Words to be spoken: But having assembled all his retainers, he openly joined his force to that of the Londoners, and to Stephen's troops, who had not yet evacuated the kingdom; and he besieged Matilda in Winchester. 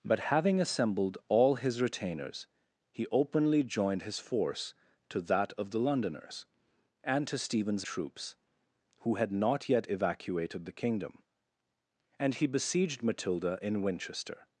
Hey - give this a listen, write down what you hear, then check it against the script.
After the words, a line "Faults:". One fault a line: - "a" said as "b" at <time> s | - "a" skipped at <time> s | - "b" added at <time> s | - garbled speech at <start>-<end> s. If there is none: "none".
But having assembled all his retainers, he openly joined his force to that of the Londoners, and to Stephen's troops, who had not yet evacuated the kingdom; and he besieged Matilda in Winchester.
Faults:
none